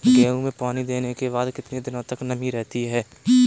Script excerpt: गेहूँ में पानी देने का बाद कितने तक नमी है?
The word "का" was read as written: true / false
false